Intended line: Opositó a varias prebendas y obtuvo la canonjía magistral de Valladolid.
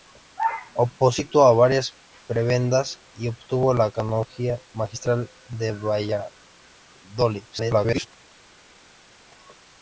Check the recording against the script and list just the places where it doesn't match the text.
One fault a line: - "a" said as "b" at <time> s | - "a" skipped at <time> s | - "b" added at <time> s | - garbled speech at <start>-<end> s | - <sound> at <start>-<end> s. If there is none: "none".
- garbled speech at 7.5-8.1 s